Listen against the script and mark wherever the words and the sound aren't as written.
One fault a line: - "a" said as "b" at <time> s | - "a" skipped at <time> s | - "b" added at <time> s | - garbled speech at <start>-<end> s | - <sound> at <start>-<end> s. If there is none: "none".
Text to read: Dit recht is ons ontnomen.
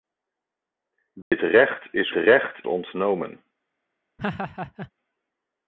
- dropout at 1.2-1.3 s
- "ons" said as "recht" at 2.1 s
- laugh at 4.2-4.9 s